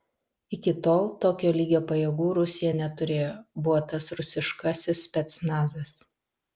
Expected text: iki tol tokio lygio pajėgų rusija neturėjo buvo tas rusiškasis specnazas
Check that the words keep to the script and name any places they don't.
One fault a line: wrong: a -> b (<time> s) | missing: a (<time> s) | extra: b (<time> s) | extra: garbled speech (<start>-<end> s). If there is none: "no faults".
no faults